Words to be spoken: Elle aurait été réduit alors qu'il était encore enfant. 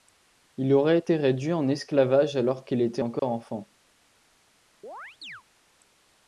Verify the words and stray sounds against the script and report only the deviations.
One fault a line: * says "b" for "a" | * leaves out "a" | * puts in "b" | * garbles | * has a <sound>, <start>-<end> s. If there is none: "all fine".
* says "Il" for "Elle"
* puts in "en esclavage"
* has a dropout, 3.2-3.2 s
* has a chirp, 4.8-5.4 s